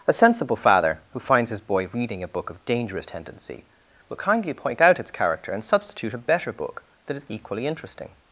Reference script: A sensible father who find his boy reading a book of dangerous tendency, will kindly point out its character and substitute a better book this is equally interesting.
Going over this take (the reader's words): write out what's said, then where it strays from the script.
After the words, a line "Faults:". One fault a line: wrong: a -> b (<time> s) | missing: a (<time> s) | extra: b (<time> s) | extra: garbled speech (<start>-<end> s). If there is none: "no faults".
A sensible father who finds his boy reading a book of dangerous tendency, will kindly point out its character and substitute a better book that is equally interesting.
Faults:
wrong: find -> finds (1.2 s)
wrong: this -> that (7.1 s)